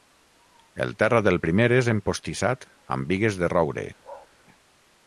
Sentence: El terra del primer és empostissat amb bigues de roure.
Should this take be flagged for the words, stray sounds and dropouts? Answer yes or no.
yes